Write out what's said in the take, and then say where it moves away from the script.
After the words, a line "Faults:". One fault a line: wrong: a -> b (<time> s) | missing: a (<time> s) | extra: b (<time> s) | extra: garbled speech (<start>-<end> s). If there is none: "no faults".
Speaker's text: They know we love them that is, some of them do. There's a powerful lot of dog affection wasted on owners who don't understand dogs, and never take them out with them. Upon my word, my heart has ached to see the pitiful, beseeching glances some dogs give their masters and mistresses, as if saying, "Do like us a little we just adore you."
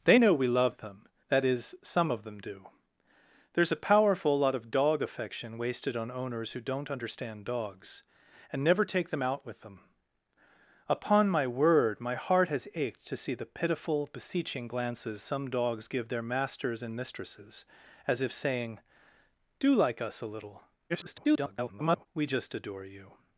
They know we love them that is, some of them do. There's a powerful lot of dog affection wasted on owners who don't understand dogs, and never take them out with them. Upon my word, my heart has ached to see the pitiful, beseeching glances some dogs give their masters and mistresses, as if saying, "Do like us a little [garbled] we just adore you."
Faults:
extra: garbled speech (20.9-22.1 s)